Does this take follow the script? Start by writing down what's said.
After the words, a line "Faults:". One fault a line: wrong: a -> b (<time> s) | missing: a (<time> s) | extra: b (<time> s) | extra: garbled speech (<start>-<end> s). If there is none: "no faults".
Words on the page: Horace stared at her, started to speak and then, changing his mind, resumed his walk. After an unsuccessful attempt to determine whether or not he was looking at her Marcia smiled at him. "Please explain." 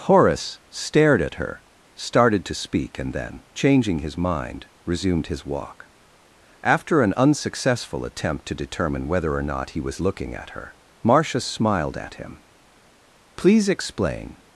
Horace stared at her, started to speak and then, changing his mind, resumed his walk. After an unsuccessful attempt to determine whether or not he was looking at her Marcia smiled at him. "Please explain."
Faults:
no faults